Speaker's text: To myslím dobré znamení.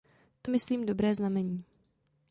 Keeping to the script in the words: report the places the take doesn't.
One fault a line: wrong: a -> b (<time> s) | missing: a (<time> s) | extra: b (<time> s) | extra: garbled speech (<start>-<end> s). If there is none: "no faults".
no faults